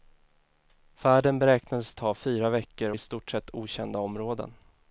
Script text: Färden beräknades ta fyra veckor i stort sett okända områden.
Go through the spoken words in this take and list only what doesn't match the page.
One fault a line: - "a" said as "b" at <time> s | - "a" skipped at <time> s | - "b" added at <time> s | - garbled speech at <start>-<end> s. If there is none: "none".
none